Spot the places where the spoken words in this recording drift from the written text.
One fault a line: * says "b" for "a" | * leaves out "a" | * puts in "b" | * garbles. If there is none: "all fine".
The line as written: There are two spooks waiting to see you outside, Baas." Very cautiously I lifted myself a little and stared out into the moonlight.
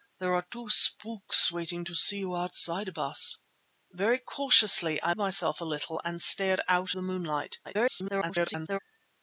* leaves out "lifted"
* leaves out "into"
* garbles